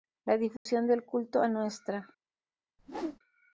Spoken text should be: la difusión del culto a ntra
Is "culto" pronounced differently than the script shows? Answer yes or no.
no